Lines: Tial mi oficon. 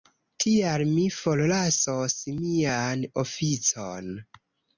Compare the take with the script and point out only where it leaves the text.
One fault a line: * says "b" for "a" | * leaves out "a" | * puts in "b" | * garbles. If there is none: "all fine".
* puts in "forlasos mian"